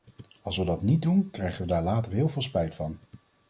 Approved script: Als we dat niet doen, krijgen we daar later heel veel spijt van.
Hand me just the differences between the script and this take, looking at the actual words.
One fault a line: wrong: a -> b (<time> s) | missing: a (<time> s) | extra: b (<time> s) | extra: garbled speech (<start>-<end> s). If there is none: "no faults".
no faults